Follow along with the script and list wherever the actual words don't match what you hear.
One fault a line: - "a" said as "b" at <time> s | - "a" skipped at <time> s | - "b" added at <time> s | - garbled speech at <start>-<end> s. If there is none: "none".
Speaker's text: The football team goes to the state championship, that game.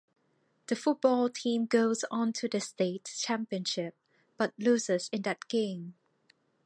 - "on" added at 2.1 s
- "but loses in" added at 4.3 s